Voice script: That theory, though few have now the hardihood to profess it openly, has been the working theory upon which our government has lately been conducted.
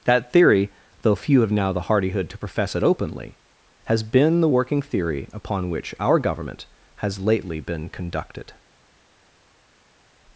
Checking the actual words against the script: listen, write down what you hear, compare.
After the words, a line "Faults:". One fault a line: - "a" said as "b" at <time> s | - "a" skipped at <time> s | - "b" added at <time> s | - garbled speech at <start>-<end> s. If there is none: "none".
That theory, though few have now the hardihood to profess it openly, has been the working theory upon which our government has lately been conducted.
Faults:
none